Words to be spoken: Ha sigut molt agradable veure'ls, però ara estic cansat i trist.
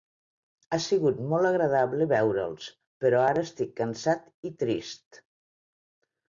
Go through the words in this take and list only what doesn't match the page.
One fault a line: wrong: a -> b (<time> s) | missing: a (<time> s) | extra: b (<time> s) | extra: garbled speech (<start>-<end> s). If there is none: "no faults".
no faults